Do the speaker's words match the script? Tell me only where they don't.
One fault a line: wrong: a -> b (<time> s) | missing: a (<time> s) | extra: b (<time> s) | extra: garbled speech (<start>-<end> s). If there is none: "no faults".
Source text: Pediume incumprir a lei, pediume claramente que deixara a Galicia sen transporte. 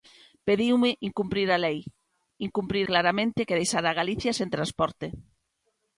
wrong: pediume -> incumprir (2.5 s)